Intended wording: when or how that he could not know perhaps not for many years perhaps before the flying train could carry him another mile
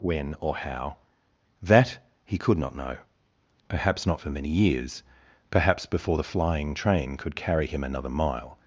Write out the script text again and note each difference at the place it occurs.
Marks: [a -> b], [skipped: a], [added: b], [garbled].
when or how that he could not know perhaps not for many years perhaps before the flying train could carry him another mile